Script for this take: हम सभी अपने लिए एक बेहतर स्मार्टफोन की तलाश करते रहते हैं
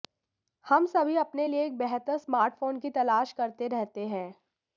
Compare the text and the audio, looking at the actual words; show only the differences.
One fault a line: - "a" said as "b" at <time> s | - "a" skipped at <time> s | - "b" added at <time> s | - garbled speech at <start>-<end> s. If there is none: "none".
none